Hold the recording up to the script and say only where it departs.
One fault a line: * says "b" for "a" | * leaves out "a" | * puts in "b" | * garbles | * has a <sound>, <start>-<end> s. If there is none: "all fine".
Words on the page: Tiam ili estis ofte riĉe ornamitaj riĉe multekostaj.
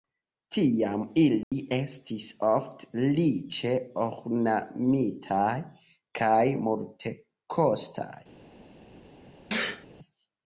* has a dropout, 1.4-1.5 s
* says "kaj" for "riĉe"
* has a sneeze, 9.5-9.9 s